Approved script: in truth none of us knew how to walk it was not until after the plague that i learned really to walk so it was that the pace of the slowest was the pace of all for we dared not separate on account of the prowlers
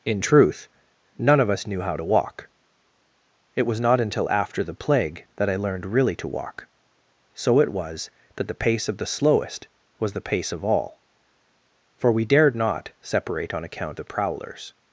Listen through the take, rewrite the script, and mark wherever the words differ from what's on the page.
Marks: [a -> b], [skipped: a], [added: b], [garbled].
in truth none of us knew how to walk it was not until after the plague that i learned really to walk so it was that the pace of the slowest was the pace of all for we dared not separate on account [skipped: of] the prowlers